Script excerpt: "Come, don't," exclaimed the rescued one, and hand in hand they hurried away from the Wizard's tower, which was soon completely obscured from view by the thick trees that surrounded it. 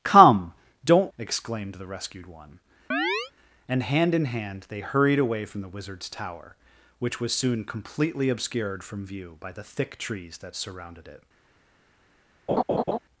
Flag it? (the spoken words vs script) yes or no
no